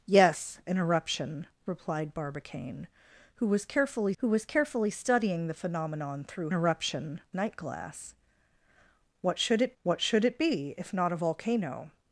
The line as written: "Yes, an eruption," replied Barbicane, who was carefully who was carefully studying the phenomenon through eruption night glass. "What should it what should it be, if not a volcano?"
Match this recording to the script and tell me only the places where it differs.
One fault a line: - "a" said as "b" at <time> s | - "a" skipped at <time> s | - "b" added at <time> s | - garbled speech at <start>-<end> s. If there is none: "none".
none